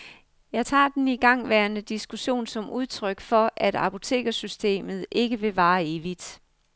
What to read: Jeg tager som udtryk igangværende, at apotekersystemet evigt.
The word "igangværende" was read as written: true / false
false